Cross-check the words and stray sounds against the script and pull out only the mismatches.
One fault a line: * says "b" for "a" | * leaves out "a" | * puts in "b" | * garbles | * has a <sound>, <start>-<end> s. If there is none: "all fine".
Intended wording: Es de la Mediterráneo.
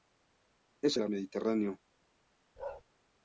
* has a bark, 2.6-2.8 s